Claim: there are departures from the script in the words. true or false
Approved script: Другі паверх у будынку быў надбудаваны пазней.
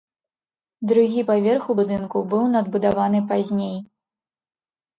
false